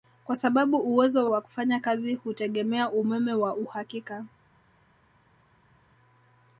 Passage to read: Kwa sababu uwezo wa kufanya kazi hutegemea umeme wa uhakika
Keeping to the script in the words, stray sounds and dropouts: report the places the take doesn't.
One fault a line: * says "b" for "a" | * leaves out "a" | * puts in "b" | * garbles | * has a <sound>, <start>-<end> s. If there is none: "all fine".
all fine